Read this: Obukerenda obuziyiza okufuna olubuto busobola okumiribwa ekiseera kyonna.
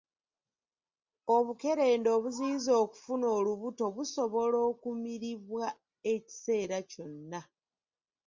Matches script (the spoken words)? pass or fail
pass